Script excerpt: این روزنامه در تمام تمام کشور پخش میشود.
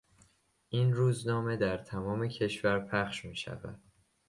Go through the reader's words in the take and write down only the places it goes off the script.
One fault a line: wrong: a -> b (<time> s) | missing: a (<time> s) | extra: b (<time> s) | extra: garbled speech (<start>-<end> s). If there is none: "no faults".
missing: تمام (2.3 s)